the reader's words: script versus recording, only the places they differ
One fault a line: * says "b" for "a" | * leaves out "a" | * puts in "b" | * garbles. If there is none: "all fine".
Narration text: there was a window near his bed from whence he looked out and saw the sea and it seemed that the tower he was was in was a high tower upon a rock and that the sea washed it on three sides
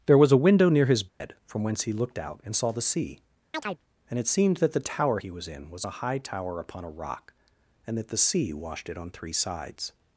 * leaves out "was"